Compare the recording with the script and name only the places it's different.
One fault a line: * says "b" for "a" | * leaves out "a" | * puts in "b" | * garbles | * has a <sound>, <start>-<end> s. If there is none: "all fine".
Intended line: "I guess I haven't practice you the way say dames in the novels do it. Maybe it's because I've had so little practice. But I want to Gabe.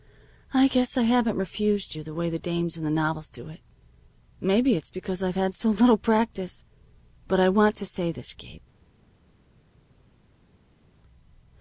* says "refused" for "practice"
* says "the" for "say"
* puts in "say this"